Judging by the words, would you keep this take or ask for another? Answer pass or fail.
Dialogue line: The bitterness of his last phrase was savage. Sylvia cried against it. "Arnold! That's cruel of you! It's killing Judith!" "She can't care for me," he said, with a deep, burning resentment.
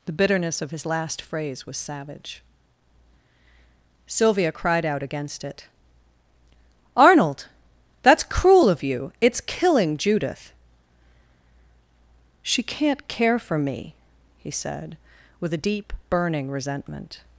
fail